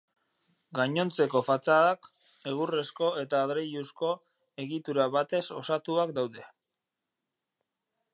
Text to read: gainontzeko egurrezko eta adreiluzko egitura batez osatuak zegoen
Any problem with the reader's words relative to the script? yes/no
yes